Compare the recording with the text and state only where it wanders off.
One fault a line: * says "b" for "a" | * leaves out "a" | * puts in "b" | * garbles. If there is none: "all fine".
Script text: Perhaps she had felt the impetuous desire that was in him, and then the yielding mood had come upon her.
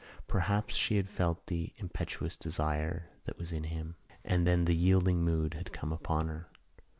all fine